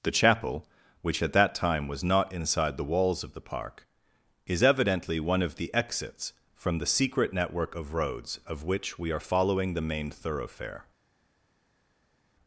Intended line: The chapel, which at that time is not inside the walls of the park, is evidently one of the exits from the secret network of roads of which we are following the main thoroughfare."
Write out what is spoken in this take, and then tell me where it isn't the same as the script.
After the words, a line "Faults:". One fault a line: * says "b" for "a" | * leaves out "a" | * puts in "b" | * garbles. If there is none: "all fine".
The chapel, which at that time was not inside the walls of the park, is evidently one of the exits from the secret network of roads of which we are following the main thoroughfare."
Faults:
* says "was" for "is"